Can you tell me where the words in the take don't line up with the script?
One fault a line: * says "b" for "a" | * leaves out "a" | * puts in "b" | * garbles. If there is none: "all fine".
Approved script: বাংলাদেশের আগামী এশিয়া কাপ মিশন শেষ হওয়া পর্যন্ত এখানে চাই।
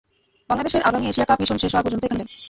all fine